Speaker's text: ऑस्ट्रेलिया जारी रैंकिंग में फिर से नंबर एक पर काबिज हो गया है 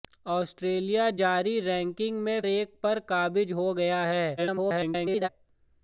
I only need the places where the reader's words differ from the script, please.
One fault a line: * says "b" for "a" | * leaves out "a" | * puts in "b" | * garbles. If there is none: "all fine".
* leaves out "फिर से नंबर"
* garbles